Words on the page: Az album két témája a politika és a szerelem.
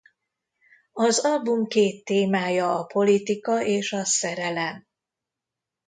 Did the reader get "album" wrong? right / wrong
right